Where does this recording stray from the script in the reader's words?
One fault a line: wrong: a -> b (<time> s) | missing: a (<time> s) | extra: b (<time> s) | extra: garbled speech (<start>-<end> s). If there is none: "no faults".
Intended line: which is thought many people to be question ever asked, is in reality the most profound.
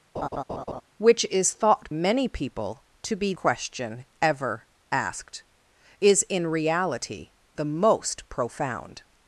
no faults